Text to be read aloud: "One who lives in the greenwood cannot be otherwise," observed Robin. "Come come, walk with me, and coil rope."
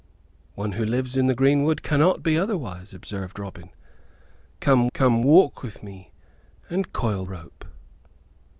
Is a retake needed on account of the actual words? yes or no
no